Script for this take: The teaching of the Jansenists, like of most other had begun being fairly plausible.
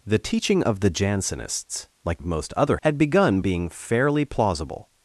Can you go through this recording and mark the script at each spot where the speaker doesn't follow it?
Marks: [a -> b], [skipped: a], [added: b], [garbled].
The teaching of the Jansenists, like of most other had begun being fairly plausible.